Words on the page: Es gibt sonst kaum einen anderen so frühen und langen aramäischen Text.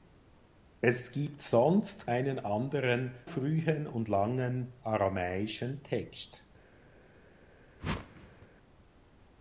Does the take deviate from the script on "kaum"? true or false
true